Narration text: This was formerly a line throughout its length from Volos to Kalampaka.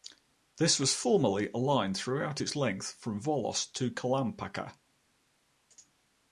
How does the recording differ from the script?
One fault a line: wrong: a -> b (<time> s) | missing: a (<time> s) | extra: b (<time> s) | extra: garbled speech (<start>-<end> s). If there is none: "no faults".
no faults